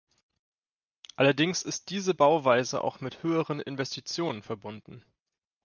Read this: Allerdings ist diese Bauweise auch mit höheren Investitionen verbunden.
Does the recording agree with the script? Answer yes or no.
yes